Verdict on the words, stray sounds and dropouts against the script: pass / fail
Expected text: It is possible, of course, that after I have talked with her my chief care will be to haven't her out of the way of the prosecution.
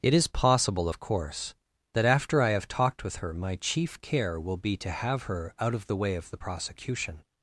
fail